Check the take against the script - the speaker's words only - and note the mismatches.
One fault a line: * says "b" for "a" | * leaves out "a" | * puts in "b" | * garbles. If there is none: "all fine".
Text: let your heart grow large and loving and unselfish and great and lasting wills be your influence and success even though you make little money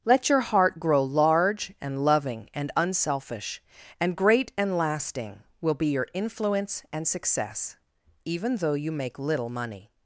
* says "will" for "wills"